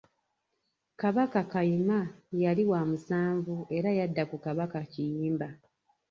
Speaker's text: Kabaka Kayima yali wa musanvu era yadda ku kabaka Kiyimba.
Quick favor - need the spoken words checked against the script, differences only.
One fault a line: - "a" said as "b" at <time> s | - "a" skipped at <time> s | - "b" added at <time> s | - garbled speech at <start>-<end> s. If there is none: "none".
none